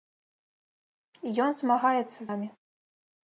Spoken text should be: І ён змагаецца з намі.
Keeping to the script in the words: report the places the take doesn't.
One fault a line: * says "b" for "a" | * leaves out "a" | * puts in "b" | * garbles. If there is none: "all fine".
* leaves out "з"